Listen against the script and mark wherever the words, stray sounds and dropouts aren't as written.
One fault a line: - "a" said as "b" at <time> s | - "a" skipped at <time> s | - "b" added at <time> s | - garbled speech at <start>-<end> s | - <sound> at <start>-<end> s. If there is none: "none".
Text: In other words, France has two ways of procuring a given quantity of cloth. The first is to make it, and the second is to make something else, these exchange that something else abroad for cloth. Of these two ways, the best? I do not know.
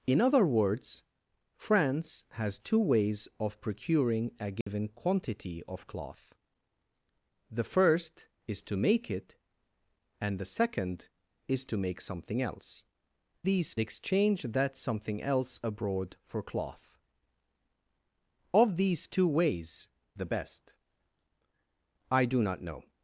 - dropout at 4.6-4.7 s